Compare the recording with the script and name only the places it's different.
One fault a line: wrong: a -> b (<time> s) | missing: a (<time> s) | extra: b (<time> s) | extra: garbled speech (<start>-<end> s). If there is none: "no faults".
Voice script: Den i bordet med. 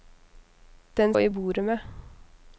no faults